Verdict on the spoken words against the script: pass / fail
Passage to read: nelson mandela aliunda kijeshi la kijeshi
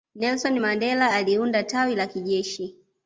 fail